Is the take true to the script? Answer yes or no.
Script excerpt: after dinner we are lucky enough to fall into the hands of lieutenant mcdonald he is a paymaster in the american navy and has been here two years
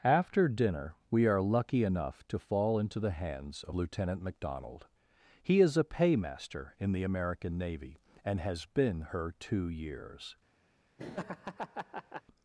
no